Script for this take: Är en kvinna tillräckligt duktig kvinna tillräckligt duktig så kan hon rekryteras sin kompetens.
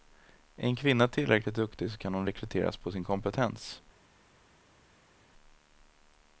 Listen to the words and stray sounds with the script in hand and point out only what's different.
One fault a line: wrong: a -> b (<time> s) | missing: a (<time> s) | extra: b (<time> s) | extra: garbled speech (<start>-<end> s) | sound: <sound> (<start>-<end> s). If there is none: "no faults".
missing: kvinna tillräckligt duktig (1.9 s)
extra: på (2.8 s)